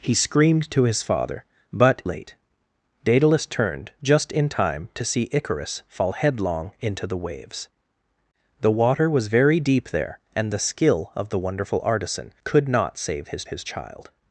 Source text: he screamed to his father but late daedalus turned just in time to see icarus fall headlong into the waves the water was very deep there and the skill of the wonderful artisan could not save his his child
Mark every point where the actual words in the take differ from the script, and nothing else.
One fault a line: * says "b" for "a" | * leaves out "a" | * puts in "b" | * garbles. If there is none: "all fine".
all fine